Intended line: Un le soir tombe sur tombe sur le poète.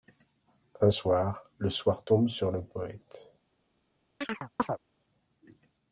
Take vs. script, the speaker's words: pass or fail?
fail